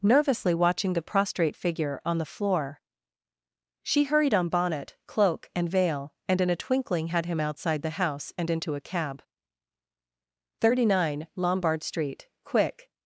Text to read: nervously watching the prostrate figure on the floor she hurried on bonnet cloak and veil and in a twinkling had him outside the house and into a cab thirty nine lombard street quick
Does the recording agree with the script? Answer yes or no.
yes